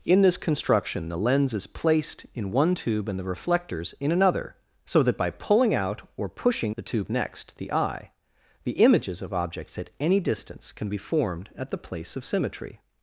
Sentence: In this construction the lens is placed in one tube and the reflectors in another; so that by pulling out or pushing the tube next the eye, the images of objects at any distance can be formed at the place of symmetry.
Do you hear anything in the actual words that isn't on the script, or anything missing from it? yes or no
no